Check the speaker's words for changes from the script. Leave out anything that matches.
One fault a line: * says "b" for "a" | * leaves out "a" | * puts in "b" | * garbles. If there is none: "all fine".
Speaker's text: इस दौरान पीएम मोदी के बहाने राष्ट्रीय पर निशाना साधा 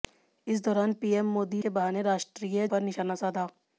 all fine